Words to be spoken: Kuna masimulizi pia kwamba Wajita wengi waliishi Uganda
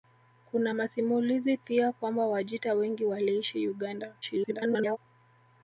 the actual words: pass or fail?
fail